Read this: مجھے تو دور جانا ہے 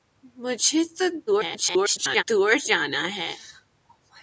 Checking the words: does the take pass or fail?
fail